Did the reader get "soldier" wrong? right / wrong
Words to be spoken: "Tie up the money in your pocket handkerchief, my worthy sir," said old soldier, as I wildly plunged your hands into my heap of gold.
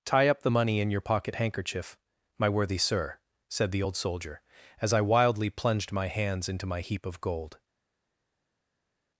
right